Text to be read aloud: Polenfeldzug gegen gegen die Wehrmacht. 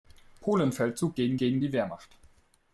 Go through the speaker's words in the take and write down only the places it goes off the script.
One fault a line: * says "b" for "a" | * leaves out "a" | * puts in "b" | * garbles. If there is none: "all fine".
all fine